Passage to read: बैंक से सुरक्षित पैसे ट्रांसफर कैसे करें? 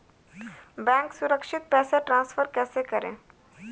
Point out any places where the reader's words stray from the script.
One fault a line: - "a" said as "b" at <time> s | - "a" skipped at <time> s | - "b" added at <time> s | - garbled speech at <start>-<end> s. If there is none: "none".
- "से" skipped at 1.1 s